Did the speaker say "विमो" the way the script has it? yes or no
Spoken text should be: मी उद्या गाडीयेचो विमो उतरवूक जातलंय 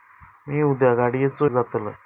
no